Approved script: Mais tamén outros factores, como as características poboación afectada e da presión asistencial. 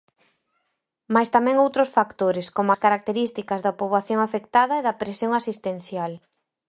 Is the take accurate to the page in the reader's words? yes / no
no